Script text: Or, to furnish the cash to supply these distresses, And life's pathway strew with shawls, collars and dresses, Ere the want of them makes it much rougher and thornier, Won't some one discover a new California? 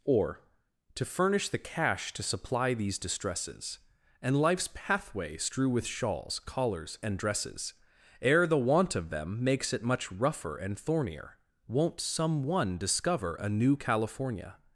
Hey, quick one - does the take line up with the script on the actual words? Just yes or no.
yes